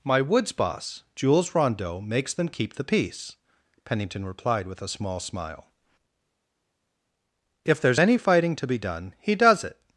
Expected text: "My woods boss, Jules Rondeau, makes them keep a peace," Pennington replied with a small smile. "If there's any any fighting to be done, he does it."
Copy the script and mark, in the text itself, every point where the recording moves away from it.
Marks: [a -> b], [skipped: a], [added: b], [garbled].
"My woods boss, Jules Rondeau, makes them keep [a -> the] peace," Pennington replied with a small smile. "If there's any [skipped: any] fighting to be done, he does it."